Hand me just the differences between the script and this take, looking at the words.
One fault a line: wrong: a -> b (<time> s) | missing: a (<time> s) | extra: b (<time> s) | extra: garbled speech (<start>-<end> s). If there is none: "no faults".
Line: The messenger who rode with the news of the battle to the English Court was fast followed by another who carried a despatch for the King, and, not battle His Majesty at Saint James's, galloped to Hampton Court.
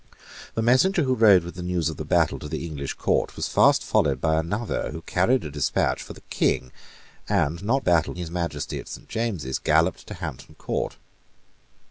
no faults